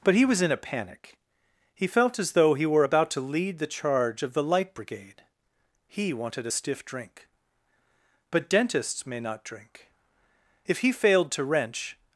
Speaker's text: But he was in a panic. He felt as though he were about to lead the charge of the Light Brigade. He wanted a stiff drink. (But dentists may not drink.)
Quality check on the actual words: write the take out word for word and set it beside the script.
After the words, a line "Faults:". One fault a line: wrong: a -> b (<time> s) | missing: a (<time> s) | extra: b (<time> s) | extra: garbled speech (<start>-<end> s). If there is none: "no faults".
But he was in a panic. He felt as though he were about to lead the charge of the Light Brigade. He wanted a stiff drink. (But dentists may not drink.) If he failed to wrench
Faults:
extra: If he failed to wrench (10.7 s)